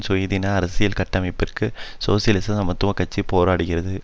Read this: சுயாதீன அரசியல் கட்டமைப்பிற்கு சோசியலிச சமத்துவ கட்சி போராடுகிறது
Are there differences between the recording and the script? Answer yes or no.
no